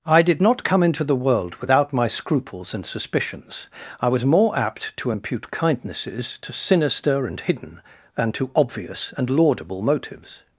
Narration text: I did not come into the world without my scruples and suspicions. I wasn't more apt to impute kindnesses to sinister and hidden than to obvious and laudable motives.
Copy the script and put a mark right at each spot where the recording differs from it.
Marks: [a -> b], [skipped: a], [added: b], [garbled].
I did not come into the world without my scruples and suspicions. I [wasn't -> was] more apt to impute kindnesses to sinister and hidden than to obvious and laudable motives.